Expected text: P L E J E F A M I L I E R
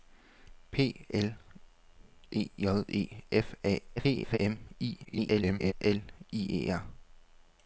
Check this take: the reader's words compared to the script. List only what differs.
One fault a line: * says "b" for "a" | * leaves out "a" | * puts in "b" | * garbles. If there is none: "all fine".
* garbles
* garbles